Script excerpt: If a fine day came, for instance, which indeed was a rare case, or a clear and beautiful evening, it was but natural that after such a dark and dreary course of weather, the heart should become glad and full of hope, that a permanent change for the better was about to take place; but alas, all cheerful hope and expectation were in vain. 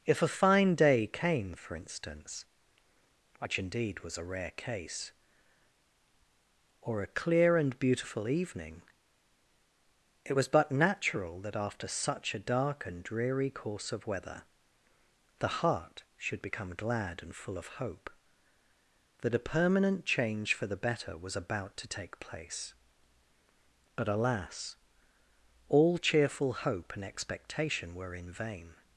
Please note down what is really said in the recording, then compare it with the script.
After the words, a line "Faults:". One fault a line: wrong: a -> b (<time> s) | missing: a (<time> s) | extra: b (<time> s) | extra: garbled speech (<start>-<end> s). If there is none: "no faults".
If a fine day came, for instance, which indeed was a rare case, or a clear and beautiful evening, it was but natural that after such a dark and dreary course of weather, the heart should become glad and full of hope, that a permanent change for the better was about to take place; but alas, all cheerful hope and expectation were in vain.
Faults:
no faults